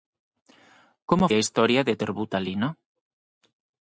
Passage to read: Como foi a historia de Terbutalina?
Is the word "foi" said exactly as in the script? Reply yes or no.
no